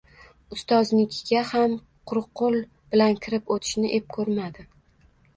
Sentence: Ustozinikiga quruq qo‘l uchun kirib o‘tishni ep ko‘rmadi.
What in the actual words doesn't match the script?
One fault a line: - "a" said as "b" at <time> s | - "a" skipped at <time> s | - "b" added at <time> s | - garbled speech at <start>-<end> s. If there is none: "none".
- "ham" added at 1.5 s
- "uchun" said as "bilan" at 3.0 s